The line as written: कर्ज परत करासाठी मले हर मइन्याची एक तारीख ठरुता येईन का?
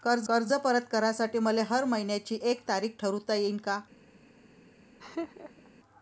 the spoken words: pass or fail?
fail